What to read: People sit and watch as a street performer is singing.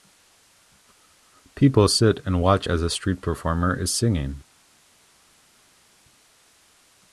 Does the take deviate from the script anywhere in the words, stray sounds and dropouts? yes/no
no